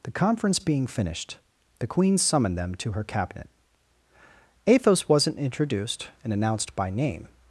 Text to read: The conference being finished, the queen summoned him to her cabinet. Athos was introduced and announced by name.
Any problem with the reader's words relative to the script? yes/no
yes